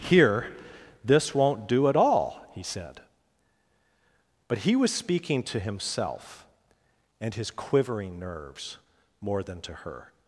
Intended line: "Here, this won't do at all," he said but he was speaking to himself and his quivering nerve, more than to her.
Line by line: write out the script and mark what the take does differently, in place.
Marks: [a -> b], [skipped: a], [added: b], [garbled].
"Here, this won't do at all," he said but he was speaking to himself and his quivering [nerve, -> nerves] more than to her.